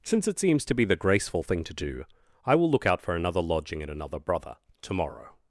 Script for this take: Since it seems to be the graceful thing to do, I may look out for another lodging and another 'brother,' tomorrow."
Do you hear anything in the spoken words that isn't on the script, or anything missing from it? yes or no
yes